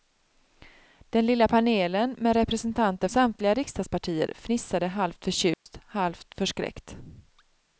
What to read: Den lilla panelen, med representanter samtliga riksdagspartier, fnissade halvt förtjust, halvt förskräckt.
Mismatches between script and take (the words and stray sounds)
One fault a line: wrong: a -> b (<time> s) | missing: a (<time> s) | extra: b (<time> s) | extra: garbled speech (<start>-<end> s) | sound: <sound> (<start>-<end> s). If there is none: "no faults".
sound: dropout (5.5-5.7 s)